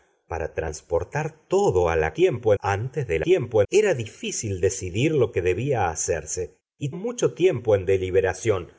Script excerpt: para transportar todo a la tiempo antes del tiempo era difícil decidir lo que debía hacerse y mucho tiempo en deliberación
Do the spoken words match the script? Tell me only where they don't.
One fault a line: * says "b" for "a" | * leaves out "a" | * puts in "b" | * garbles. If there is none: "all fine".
all fine